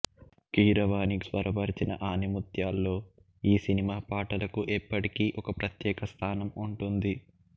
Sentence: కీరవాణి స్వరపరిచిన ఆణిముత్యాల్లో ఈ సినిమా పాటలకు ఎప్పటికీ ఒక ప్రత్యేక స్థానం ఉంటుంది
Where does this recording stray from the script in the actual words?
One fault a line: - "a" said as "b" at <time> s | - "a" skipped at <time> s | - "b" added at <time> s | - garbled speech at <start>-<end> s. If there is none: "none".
none